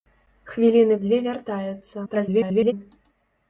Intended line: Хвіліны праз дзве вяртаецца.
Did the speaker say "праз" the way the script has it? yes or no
no